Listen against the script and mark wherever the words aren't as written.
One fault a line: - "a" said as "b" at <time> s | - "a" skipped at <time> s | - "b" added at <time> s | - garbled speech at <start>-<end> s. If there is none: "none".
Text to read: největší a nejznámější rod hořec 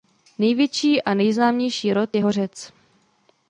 - "je" added at 2.1 s